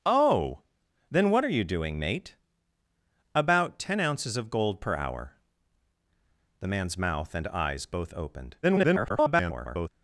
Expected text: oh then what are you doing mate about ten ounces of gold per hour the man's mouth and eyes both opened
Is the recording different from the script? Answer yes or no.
yes